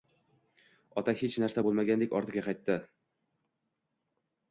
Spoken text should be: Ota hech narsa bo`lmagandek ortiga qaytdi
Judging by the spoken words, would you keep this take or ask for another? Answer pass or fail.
pass